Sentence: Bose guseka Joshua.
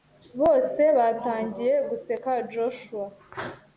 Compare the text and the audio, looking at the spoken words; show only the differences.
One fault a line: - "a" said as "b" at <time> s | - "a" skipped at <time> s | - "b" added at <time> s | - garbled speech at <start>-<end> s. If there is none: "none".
- "batangiye" added at 1.0 s